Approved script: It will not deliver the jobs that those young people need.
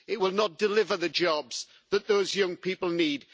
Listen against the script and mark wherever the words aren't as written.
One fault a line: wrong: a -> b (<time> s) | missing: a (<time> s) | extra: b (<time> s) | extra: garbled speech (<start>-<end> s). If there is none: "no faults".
no faults